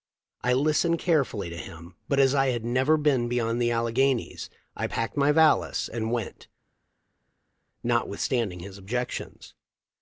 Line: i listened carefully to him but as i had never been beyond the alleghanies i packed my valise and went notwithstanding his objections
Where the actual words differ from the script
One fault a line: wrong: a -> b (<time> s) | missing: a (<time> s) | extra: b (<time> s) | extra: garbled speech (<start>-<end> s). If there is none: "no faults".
no faults